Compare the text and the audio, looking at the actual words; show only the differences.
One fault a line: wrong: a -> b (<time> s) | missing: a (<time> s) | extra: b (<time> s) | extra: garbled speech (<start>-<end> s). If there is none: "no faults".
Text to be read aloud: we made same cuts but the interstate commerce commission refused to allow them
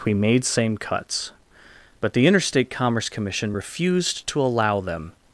no faults